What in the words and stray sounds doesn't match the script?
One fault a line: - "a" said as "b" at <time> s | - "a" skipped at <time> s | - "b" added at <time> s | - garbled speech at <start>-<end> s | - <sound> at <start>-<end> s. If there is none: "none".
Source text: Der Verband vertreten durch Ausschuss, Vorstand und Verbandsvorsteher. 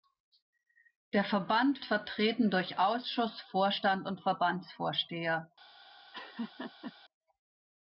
- laugh at 6.1-6.9 s